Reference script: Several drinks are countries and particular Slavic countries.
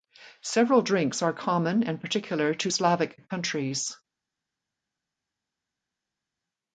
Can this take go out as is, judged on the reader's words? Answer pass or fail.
fail